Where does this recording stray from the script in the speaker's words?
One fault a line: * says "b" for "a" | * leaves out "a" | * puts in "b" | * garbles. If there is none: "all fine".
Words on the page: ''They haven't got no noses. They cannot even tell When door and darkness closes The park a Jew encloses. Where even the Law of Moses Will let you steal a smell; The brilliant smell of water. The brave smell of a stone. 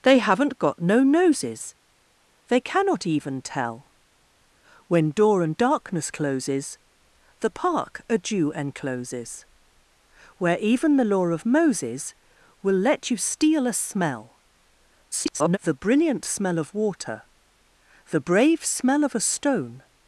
* garbles